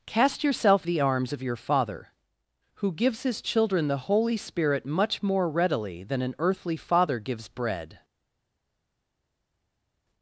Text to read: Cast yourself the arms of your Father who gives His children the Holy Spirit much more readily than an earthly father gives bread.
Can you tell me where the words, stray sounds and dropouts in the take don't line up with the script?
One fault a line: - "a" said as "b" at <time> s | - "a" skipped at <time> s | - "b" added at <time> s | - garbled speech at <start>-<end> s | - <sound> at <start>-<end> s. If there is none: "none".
none